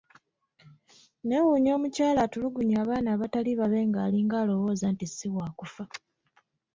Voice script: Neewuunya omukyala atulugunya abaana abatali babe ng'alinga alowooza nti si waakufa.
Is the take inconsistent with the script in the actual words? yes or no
no